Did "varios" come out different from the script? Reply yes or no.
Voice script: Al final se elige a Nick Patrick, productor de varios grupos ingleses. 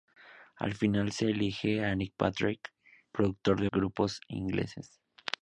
yes